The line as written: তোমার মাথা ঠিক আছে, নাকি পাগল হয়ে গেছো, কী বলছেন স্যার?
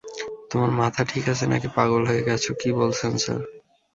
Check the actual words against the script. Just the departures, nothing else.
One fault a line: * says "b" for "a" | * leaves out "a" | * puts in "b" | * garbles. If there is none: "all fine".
all fine